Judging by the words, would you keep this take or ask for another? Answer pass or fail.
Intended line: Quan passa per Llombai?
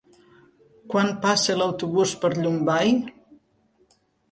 fail